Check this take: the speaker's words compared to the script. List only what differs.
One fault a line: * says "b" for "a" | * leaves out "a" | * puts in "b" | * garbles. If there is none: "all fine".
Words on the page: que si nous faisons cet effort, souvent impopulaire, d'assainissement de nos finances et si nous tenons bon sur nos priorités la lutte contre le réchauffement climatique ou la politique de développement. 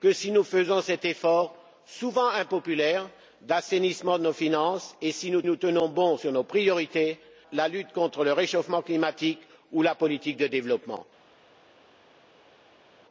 * puts in "nous"